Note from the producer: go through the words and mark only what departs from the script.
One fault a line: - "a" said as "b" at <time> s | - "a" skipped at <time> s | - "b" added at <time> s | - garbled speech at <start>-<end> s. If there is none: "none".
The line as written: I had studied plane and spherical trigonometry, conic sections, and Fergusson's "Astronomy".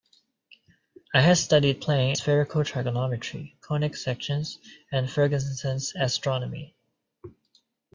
- "and" skipped at 2.2 s